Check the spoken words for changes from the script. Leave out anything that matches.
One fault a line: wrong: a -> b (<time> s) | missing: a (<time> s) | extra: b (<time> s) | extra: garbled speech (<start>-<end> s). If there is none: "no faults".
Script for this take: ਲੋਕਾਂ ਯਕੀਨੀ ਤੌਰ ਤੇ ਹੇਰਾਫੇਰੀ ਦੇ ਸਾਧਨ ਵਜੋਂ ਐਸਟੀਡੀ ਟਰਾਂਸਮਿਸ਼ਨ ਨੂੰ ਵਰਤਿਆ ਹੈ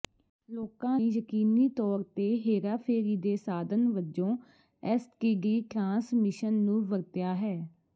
no faults